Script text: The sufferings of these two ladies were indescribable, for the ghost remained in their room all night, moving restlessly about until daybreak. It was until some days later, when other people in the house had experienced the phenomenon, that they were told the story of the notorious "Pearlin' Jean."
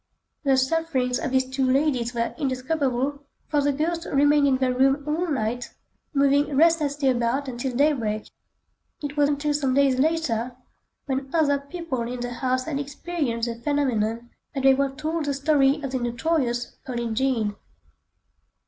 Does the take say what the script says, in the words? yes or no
yes